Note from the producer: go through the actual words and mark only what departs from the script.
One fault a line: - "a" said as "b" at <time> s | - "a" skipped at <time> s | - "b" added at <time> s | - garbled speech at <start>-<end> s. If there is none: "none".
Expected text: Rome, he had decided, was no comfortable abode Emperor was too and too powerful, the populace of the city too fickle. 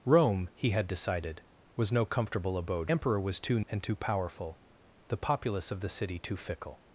none